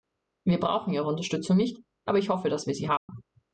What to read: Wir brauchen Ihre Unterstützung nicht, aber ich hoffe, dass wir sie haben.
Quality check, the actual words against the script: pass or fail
pass